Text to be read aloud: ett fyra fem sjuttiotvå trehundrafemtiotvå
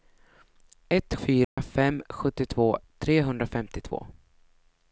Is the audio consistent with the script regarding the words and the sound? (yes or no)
no